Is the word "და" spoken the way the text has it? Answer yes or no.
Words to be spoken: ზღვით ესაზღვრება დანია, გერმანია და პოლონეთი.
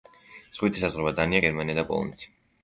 yes